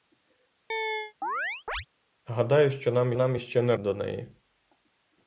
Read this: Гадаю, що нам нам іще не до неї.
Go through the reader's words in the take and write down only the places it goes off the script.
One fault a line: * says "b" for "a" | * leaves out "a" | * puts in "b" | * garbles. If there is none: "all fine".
all fine